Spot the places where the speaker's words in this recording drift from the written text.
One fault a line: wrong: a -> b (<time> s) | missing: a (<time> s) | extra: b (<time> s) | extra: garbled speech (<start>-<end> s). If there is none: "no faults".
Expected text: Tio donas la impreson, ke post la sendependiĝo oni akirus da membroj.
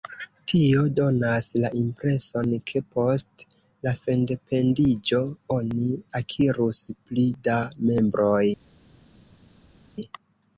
extra: pli (7.1 s)